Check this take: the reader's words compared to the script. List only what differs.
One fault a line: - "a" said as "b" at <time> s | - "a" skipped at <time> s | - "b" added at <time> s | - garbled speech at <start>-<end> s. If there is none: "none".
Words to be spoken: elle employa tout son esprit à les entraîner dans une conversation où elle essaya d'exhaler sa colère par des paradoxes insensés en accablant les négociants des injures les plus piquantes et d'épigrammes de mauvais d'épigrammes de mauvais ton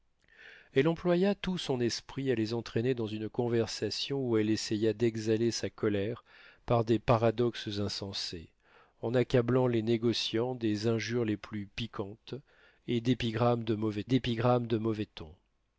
none